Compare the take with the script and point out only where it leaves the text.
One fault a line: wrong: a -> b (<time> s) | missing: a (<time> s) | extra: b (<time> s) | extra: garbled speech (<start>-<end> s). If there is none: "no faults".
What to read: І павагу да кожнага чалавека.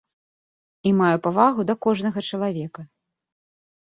extra: маю (1.0 s)